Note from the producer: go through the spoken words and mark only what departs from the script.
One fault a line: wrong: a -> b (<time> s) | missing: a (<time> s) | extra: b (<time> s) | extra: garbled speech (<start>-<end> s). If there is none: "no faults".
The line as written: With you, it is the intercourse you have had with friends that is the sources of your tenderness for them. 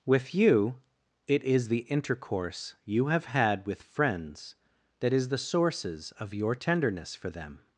no faults